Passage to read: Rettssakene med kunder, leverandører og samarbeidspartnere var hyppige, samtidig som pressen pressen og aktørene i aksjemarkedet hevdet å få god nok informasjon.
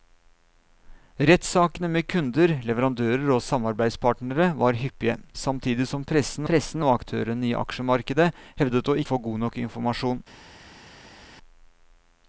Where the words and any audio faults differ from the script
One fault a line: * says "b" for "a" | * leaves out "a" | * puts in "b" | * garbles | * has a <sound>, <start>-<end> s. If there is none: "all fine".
all fine